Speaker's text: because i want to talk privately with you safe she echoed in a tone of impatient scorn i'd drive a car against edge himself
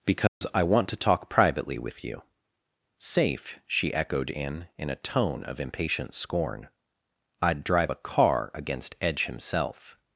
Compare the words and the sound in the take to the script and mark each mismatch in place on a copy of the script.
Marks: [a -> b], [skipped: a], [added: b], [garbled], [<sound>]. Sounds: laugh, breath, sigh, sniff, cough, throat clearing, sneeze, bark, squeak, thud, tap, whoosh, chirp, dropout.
because [dropout] i want to talk privately with you safe she echoed in [added: in] a tone of impatient scorn i'd drive a car against edge himself